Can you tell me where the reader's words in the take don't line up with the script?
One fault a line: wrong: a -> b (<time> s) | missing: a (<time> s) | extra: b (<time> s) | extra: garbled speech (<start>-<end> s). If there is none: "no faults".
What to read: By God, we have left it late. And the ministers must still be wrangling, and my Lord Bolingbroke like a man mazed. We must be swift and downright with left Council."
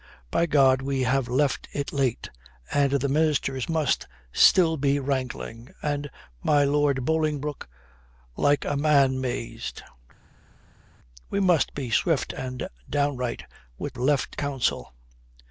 no faults